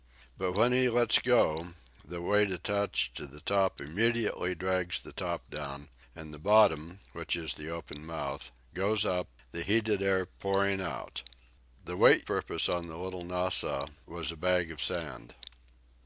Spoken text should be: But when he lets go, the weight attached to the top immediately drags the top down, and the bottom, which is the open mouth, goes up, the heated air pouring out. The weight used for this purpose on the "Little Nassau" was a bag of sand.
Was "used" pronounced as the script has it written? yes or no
no